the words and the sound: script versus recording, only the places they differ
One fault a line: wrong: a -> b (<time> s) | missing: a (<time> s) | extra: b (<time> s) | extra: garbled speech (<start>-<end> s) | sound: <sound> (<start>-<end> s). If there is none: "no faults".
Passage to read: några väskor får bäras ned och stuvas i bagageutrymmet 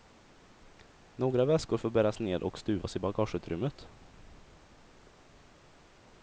no faults